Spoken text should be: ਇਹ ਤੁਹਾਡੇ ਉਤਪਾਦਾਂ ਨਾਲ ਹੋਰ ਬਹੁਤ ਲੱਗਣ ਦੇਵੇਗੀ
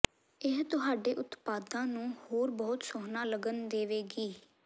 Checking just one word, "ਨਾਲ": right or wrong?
wrong